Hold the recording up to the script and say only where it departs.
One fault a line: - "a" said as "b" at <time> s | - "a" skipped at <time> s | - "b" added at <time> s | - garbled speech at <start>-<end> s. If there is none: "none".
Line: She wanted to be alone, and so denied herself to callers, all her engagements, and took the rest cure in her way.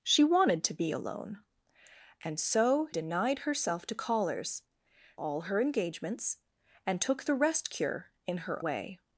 none